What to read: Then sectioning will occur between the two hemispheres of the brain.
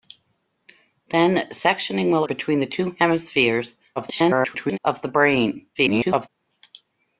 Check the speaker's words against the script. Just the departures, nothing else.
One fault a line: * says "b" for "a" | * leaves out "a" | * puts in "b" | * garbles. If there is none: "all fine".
* leaves out "occur"
* garbles
* garbles